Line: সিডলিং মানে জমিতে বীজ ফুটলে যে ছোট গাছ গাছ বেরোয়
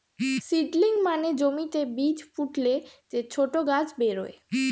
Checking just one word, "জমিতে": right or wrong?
right